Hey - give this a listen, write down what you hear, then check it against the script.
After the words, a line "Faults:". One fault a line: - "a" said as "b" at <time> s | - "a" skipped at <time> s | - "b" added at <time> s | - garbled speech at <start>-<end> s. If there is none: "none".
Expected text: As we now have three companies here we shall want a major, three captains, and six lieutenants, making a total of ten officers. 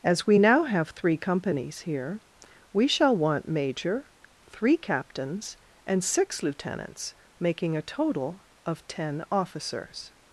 As we now have three companies here we shall want major, three captains, and six lieutenants, making a total of ten officers.
Faults:
- "a" skipped at 3.5 s